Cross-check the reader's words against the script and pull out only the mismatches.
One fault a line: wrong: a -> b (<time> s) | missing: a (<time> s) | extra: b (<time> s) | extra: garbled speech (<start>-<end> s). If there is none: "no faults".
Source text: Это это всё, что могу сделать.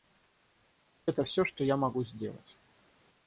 missing: это (1.2 s)
extra: я (1.6 s)